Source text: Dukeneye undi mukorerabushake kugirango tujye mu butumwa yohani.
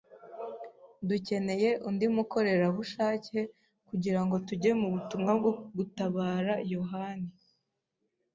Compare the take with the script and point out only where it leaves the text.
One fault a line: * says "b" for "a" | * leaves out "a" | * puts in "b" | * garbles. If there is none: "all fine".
* puts in "bwo gutabara"